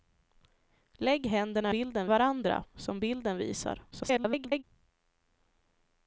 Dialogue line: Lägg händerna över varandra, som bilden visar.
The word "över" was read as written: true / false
false